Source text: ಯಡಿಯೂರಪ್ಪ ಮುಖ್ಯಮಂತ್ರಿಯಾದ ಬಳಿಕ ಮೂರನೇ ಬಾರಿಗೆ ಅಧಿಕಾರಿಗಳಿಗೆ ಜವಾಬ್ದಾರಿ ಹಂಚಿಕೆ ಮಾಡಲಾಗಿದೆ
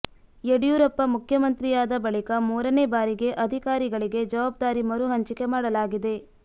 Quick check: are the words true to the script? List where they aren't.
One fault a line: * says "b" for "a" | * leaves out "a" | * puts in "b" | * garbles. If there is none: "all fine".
* puts in "ಮರು"